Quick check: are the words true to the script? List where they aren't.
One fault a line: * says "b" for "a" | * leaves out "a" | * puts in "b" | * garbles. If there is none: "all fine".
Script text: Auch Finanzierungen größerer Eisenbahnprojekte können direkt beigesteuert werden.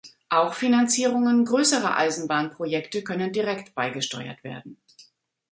all fine